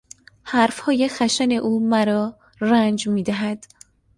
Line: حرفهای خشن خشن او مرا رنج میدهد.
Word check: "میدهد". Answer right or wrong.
right